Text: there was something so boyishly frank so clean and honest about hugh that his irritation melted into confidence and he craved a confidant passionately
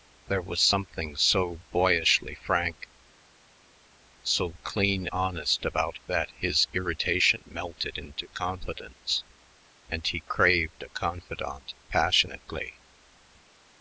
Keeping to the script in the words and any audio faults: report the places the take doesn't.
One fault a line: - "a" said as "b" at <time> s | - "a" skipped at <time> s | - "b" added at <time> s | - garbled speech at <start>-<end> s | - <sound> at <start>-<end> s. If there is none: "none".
- "and" skipped at 5.1 s
- "hugh" skipped at 6.0 s